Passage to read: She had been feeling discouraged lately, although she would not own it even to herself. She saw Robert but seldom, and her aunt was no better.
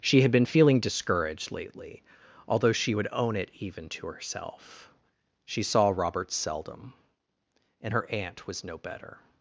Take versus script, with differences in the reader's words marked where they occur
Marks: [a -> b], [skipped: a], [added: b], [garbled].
She had been feeling discouraged lately, although she would [skipped: not] own it even to herself. She saw Robert [skipped: but] seldom, and her aunt was no better.